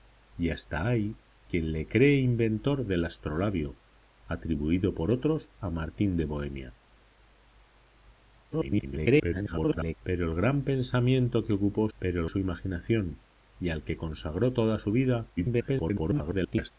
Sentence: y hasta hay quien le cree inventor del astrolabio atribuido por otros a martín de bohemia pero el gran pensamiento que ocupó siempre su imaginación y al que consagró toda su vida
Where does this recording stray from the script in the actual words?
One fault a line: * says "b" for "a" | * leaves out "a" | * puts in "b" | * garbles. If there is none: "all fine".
* garbles
* says "pero" for "siempre"
* garbles